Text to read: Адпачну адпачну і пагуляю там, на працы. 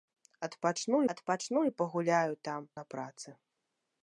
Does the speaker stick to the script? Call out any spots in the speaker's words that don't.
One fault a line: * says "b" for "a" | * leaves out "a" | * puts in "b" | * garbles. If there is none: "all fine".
all fine